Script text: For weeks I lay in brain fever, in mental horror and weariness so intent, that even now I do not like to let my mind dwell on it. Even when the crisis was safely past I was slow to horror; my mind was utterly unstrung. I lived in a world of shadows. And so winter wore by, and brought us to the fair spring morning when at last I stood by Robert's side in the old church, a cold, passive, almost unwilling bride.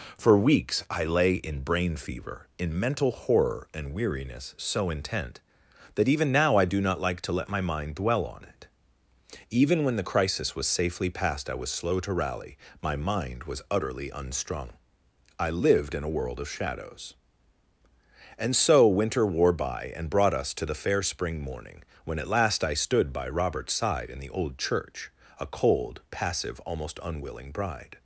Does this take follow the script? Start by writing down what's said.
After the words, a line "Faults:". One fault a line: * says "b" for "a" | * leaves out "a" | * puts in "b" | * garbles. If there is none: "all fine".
For weeks I lay in brain fever, in mental horror and weariness so intent, that even now I do not like to let my mind dwell on it. Even when the crisis was safely past I was slow to rally; my mind was utterly unstrung. I lived in a world of shadows. And so winter wore by, and brought us to the fair spring morning when at last I stood by Robert's side in the old church, a cold, passive, almost unwilling bride.
Faults:
* says "rally" for "horror"